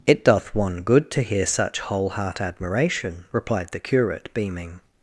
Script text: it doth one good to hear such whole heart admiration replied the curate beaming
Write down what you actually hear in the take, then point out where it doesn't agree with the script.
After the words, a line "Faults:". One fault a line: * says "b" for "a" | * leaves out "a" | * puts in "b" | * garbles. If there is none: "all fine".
it doth one good to hear such whole heart admiration replied the curate beaming
Faults:
all fine